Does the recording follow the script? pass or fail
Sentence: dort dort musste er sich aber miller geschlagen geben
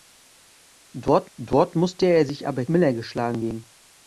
pass